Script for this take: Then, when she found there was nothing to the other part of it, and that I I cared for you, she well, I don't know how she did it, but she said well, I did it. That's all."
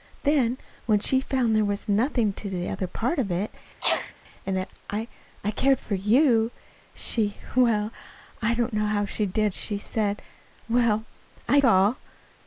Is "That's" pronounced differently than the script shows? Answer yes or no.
yes